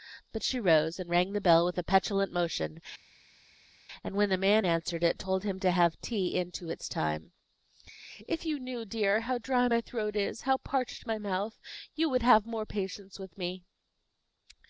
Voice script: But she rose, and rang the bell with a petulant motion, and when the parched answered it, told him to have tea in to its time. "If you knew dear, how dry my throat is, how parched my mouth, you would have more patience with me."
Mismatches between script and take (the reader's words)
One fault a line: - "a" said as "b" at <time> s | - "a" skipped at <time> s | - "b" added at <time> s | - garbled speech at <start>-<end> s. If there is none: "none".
- "parched" said as "man" at 4.4 s